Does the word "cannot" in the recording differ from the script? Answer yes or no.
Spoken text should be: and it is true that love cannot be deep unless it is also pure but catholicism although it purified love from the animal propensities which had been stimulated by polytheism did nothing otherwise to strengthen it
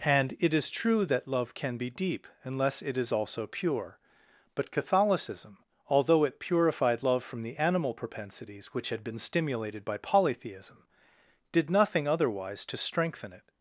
yes